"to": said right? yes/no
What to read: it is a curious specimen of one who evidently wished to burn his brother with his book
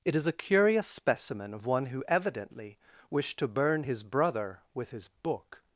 yes